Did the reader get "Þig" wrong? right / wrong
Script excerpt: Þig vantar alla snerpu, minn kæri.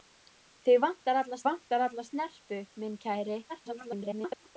right